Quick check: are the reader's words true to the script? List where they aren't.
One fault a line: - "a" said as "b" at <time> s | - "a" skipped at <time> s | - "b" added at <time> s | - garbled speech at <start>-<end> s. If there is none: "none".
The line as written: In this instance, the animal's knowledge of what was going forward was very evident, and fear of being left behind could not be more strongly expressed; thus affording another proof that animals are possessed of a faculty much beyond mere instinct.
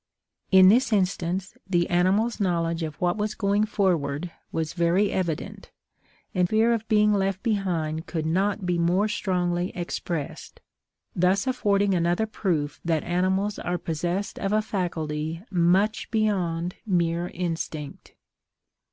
none